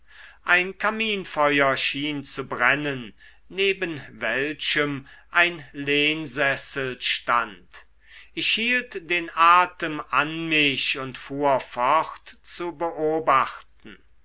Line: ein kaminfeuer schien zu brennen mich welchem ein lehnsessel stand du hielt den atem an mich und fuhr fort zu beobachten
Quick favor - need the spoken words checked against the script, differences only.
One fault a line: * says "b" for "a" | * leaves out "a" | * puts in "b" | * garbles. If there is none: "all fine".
* says "neben" for "mich"
* says "ich" for "du"